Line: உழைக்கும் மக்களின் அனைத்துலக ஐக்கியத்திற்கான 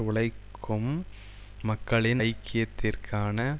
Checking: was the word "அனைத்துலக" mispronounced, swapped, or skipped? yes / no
yes